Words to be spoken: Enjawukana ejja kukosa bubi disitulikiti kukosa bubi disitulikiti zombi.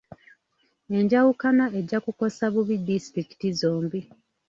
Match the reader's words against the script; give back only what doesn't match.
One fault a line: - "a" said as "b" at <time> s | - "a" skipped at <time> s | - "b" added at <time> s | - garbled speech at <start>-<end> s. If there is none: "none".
- "kukosa bubi disitulikiti" skipped at 3.5 s